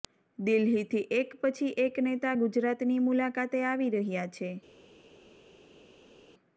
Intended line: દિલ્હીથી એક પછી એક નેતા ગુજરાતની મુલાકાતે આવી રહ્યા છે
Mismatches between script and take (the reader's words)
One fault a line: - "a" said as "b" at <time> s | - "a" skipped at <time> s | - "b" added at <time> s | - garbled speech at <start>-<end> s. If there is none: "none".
none